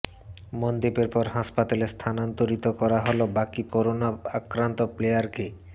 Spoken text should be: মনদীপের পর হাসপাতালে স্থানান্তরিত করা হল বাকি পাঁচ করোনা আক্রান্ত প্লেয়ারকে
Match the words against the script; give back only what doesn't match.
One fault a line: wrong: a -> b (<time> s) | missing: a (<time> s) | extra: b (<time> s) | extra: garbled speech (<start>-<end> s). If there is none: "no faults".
missing: পাঁচ (3.6 s)